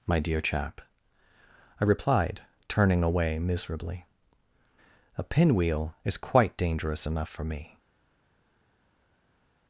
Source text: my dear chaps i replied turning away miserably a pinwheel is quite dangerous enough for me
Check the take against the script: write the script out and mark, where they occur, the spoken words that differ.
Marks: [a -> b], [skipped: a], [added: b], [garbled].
my dear [chaps -> chap] i replied turning away miserably a pinwheel is quite dangerous enough for me